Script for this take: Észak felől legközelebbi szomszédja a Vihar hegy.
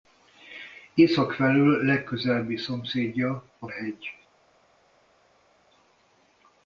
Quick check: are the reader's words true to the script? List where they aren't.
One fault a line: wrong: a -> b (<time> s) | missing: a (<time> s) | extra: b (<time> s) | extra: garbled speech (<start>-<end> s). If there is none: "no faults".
missing: Vihar (3.7 s)